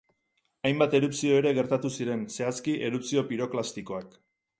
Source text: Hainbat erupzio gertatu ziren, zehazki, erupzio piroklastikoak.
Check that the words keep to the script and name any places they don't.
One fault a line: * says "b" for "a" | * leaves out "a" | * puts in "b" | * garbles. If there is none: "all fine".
* puts in "ere"